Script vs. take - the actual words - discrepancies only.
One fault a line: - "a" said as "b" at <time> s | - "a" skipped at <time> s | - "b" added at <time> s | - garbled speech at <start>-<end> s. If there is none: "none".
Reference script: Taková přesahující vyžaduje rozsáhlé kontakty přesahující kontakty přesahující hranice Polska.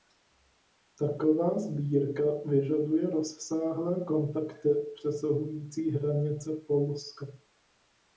- "přesahující" said as "sbírka" at 1.6 s
- "kontakty přesahující" skipped at 5.9 s